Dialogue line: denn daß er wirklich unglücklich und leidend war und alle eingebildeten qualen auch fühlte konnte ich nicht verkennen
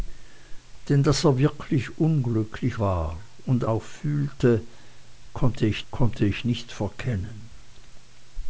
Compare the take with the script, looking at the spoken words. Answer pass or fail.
fail